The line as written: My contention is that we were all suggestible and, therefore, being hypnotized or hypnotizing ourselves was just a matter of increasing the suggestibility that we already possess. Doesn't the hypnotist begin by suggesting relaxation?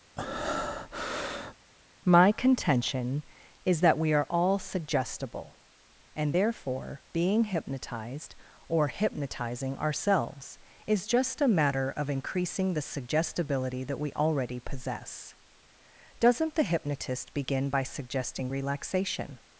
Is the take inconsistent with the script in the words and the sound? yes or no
yes